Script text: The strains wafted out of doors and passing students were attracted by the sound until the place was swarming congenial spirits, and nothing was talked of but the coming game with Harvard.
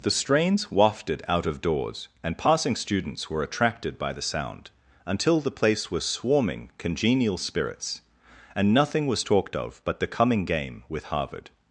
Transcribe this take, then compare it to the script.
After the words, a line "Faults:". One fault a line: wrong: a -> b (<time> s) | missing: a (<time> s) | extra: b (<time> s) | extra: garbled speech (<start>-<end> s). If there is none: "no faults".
The strains wafted out of doors and passing students were attracted by the sound until the place was swarming congenial spirits, and nothing was talked of but the coming game with Harvard.
Faults:
no faults